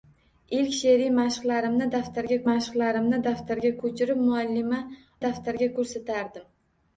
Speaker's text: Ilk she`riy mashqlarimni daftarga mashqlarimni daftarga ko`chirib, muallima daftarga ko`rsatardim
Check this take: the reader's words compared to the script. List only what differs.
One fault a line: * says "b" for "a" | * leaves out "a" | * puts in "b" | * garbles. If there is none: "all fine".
all fine